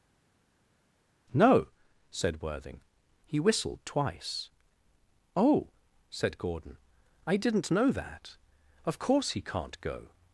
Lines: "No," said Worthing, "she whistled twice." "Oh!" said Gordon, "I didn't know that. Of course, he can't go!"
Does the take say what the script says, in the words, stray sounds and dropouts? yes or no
no